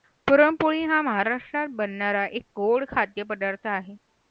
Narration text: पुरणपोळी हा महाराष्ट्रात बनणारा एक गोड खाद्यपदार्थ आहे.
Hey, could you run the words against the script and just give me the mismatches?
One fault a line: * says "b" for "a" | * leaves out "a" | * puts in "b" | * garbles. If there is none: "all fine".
all fine